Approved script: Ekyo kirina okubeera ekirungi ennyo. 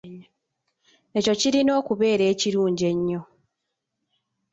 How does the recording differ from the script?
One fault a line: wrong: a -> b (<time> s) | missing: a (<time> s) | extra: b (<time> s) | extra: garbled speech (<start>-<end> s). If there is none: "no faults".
no faults